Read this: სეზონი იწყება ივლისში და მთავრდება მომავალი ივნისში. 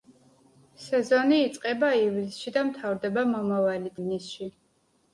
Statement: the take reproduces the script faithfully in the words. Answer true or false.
true